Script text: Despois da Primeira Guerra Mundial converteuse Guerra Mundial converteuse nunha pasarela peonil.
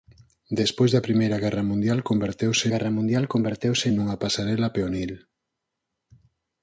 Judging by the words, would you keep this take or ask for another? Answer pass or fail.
pass